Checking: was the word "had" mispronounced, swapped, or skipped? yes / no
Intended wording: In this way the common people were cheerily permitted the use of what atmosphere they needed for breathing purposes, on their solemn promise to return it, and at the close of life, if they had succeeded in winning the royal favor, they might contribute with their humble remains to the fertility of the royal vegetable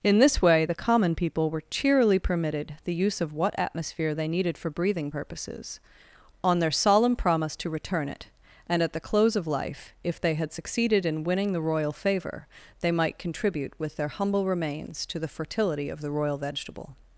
no